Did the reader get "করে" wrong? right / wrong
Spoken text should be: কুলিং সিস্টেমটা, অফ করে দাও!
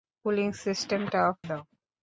wrong